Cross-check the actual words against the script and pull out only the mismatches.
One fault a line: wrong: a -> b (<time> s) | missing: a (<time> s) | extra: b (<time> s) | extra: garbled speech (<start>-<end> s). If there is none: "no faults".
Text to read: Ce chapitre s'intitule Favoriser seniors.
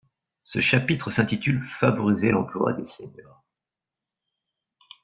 extra: l'emploi des (2.3 s)